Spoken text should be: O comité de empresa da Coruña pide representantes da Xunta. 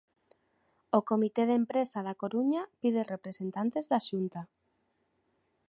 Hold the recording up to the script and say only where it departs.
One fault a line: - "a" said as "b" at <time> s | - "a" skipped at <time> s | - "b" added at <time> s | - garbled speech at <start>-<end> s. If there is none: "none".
none